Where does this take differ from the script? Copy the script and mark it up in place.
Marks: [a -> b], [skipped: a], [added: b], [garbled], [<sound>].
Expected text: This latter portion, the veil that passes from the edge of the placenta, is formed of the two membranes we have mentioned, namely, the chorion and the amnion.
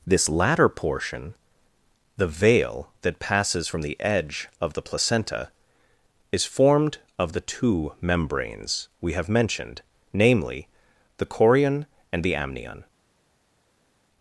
This latter portion, the veil that passes from the edge of the placenta, is formed of the two membranes we have mentioned, namely, the chorion and the amnion.